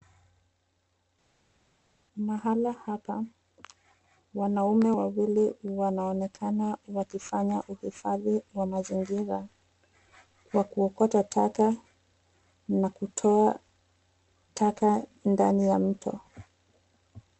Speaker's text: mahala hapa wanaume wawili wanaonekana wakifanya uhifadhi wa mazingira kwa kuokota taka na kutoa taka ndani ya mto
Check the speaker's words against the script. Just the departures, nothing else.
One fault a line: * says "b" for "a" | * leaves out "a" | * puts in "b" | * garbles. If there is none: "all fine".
all fine